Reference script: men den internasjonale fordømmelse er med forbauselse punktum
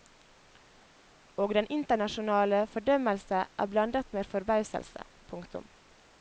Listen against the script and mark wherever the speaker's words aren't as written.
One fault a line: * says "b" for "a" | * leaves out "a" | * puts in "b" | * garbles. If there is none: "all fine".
* says "og" for "men"
* puts in "blandet"